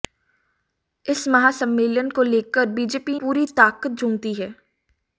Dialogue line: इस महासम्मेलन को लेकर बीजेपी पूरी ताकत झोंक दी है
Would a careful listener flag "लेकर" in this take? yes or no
no